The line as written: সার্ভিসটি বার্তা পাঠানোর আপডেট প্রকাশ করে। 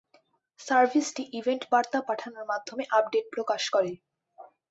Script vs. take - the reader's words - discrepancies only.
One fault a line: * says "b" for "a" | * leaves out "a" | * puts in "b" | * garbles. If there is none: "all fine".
* puts in "ইভেন্ট"
* puts in "মাধ্যমে"